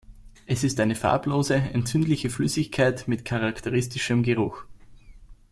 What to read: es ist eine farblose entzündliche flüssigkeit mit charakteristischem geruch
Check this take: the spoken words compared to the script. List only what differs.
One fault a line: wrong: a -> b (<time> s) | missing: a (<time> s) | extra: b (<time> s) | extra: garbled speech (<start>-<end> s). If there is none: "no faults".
no faults